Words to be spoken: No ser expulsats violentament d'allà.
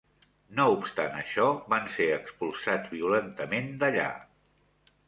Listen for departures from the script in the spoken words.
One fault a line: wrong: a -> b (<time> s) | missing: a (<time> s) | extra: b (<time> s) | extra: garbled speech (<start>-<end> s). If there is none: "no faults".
extra: obstant això van (0.8 s)